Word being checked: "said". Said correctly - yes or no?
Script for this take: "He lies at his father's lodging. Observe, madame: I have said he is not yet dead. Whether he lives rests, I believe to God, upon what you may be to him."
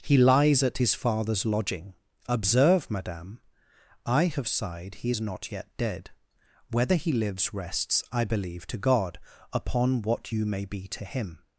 no